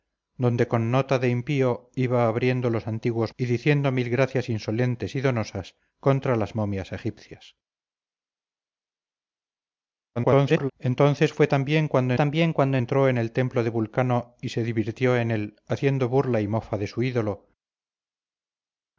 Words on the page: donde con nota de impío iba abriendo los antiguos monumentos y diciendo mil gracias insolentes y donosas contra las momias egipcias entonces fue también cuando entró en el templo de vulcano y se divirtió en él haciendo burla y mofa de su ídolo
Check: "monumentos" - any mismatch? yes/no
yes